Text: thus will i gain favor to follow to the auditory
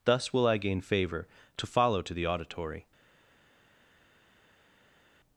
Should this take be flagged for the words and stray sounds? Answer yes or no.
no